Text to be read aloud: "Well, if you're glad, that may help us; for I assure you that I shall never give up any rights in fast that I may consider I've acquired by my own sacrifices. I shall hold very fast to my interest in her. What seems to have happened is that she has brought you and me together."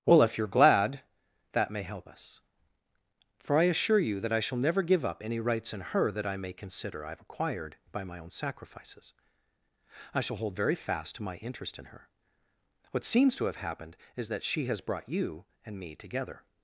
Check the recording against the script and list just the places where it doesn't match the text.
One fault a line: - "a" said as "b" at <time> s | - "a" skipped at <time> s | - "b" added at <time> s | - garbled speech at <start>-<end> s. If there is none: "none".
- "fast" said as "her" at 5.8 s